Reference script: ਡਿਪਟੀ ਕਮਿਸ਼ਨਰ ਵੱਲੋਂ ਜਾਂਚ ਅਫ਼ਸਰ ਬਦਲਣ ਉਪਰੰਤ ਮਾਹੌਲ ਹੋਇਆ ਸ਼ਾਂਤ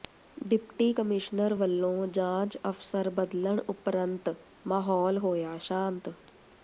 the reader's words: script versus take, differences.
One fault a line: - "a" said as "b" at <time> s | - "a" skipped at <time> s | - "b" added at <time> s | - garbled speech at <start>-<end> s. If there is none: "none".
none